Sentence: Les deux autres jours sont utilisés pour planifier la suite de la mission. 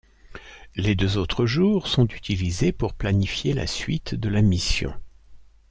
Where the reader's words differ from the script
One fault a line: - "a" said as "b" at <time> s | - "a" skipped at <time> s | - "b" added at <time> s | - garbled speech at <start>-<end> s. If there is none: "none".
none